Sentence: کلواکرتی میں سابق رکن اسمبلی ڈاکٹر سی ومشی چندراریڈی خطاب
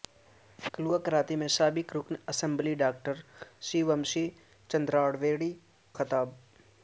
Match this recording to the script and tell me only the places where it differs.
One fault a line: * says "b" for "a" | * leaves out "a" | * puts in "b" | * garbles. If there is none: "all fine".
all fine